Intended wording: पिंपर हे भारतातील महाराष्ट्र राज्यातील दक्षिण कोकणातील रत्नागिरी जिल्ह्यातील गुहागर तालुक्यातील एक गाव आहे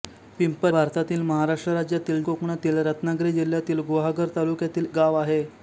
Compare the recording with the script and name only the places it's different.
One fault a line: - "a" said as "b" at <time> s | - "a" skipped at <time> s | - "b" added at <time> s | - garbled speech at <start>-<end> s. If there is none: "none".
- "हे" skipped at 0.7 s
- "दक्षिण" skipped at 2.2 s
- "एक" skipped at 4.9 s